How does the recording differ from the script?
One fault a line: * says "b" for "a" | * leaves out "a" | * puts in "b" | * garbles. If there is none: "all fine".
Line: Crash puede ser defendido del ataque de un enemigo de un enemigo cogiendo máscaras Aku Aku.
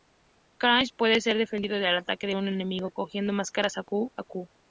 * leaves out "de un enemigo"